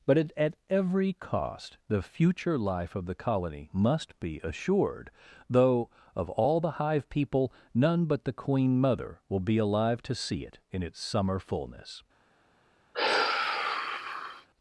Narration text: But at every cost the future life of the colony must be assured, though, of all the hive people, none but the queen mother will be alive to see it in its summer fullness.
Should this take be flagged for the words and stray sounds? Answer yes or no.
yes